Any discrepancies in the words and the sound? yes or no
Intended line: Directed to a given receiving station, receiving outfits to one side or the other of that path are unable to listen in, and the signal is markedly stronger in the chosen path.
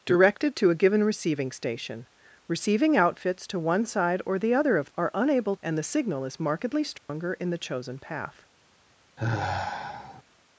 yes